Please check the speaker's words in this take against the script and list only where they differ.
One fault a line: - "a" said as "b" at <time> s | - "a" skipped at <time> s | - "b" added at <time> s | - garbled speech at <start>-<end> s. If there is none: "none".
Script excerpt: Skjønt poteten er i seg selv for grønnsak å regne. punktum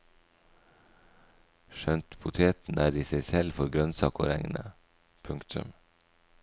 none